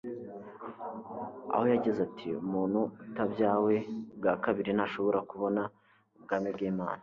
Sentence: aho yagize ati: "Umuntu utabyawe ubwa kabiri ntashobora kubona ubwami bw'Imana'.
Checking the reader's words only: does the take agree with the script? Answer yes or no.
yes